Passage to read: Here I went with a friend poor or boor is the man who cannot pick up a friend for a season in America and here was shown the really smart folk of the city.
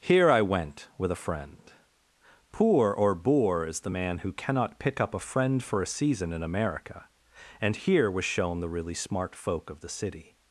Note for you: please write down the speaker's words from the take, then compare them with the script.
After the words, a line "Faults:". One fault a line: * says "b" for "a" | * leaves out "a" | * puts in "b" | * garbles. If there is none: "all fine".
Here I went with a friend poor or boor is the man who cannot pick up a friend for a season in America and here was shown the really smart folk of the city.
Faults:
all fine